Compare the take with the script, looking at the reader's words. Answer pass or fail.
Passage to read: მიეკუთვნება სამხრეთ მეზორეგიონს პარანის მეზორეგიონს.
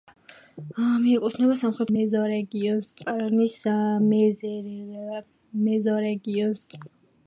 pass